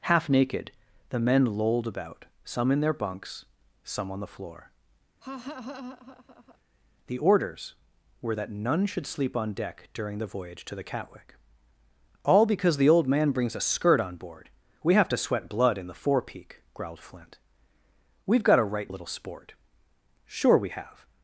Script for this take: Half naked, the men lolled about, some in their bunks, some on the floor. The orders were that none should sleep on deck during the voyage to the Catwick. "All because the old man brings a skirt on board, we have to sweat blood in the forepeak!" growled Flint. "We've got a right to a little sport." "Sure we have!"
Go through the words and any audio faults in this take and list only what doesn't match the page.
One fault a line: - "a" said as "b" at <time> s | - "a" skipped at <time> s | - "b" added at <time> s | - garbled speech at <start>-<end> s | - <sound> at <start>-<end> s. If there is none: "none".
- laugh at 5.2-6.6 s
- "to" skipped at 18.9 s